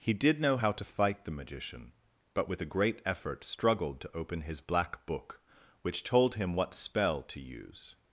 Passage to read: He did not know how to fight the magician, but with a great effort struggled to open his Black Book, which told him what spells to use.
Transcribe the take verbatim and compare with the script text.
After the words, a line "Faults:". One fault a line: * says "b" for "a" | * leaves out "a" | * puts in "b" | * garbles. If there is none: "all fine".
He did know how to fight the magician, but with a great effort struggled to open his Black Book, which told him what spell to use.
Faults:
* leaves out "not"
* says "spell" for "spells"